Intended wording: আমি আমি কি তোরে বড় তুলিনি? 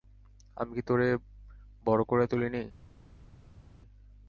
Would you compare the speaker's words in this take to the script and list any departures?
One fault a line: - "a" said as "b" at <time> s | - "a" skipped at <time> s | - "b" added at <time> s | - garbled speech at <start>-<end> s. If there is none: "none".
- "আমি" skipped at 0.7 s
- "করে" added at 2.0 s